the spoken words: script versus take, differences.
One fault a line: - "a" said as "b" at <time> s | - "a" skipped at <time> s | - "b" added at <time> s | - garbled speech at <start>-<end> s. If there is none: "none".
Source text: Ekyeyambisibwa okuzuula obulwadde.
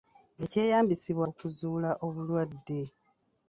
none